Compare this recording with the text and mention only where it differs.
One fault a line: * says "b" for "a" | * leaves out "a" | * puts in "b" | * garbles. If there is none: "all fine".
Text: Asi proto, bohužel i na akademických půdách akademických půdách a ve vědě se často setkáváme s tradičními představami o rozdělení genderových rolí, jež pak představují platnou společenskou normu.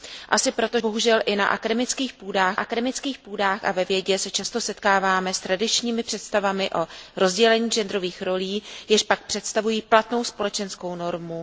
all fine